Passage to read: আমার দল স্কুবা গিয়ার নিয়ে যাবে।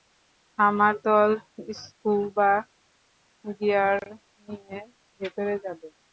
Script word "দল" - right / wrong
right